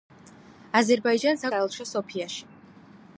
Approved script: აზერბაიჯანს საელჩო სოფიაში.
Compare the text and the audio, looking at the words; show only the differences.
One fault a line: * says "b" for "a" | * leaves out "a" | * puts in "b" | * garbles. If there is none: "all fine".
all fine